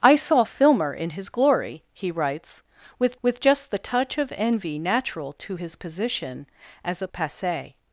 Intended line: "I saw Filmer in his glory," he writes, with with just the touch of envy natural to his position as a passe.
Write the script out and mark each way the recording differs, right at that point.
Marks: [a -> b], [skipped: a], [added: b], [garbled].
"I saw Filmer in his glory," he writes, with with just the touch of envy natural to his position as a passe.